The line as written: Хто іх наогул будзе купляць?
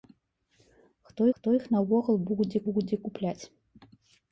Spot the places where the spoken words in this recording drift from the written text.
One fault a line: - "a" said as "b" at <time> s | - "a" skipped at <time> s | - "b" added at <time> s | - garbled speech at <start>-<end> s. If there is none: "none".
- "хто" added at 1.4 s
- "будзе" added at 2.7 s